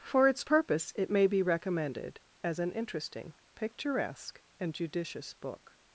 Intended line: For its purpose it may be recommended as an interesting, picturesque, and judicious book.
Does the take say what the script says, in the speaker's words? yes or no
yes